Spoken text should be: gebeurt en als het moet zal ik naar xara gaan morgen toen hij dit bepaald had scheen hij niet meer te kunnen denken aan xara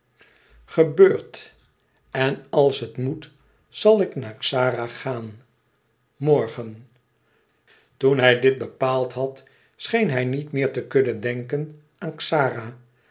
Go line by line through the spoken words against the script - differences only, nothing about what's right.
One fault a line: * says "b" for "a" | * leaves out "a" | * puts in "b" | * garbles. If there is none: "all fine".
all fine